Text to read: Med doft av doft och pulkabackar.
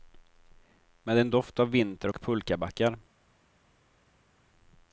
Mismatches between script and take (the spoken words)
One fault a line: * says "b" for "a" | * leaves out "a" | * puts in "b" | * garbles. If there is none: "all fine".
* puts in "en"
* says "vinter" for "doft"